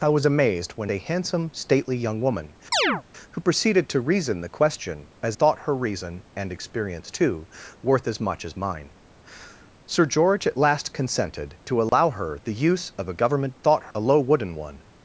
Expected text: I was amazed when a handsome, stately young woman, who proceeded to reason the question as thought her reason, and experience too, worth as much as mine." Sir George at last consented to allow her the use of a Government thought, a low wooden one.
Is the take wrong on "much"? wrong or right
right